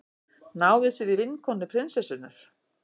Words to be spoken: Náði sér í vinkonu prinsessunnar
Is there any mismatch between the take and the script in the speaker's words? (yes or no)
no